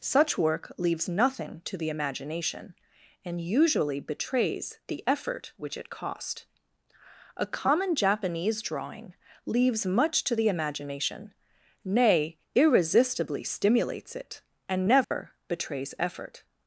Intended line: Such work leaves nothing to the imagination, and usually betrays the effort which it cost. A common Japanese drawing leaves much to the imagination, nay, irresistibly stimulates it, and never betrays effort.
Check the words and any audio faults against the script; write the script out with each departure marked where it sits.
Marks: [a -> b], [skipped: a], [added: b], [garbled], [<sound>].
Such work leaves nothing to the imagination, and usually betrays the effort which it cost. A common Japanese drawing leaves much to the imagination, nay, irresistibly stimulates it, and never [dropout] betrays effort.